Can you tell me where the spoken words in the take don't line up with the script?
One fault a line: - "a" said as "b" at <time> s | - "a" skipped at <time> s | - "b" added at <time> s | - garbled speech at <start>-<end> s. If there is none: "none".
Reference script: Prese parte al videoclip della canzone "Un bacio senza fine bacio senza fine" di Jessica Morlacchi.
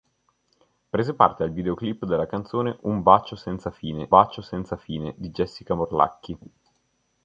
none